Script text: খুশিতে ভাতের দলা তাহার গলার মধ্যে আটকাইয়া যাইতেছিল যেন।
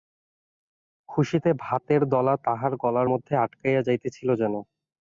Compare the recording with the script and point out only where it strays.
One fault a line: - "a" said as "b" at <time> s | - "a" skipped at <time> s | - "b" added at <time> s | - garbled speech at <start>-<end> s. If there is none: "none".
none